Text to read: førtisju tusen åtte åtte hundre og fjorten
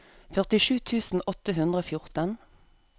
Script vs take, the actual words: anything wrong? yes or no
yes